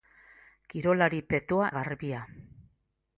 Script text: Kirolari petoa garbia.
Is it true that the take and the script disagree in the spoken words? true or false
false